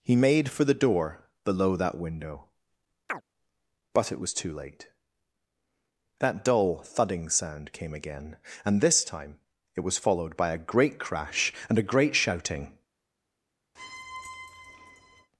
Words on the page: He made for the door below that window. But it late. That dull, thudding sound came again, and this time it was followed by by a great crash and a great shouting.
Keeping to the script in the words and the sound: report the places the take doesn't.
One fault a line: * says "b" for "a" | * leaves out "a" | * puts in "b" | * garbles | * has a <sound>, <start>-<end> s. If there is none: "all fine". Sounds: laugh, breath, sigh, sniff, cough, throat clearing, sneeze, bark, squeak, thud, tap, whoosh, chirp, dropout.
* has a chirp, 3.1-3.2 s
* puts in "was too"
* leaves out "by"
* has a squeak, 13.8-15.3 s